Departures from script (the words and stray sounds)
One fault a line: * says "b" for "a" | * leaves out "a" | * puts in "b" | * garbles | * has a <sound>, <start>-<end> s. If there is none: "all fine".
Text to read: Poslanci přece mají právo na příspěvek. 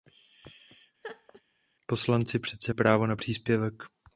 * has a laugh, 1.0-1.4 s
* leaves out "mají"